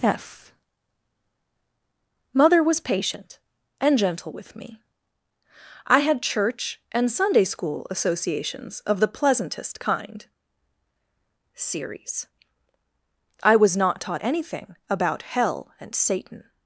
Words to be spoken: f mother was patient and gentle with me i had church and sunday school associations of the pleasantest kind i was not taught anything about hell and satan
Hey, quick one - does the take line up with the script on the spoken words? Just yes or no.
no